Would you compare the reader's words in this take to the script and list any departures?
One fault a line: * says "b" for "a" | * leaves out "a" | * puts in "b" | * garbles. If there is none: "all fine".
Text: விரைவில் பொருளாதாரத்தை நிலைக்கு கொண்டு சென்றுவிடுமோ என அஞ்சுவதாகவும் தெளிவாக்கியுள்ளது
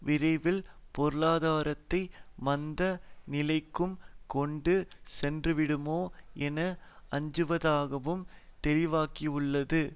* puts in "மந்த"